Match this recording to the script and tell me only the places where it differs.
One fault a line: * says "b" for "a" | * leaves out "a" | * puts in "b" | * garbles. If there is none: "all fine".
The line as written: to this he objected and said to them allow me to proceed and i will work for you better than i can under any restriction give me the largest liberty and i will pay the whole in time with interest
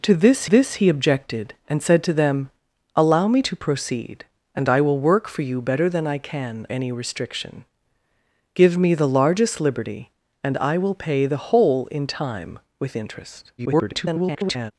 * puts in "this"
* leaves out "under"
* garbles